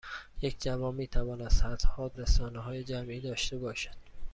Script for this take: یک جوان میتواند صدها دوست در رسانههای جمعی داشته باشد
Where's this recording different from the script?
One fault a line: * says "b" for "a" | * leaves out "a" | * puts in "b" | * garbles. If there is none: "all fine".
* leaves out "دوست در"